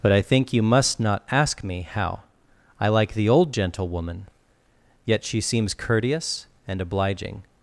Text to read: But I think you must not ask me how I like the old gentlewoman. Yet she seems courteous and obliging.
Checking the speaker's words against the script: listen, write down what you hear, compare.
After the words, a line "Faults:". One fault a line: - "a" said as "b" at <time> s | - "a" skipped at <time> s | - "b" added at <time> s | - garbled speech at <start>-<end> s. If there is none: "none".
But I think you must not ask me how I like the old gentlewoman. Yet she seems courteous and obliging.
Faults:
none